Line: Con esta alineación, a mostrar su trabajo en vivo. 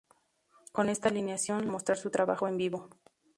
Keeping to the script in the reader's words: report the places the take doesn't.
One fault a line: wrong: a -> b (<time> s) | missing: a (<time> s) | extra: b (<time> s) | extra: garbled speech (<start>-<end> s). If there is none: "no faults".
no faults